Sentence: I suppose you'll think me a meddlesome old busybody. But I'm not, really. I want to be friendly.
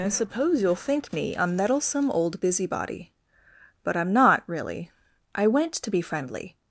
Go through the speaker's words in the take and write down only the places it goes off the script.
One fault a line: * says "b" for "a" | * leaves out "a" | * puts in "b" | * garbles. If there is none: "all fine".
* says "went" for "want"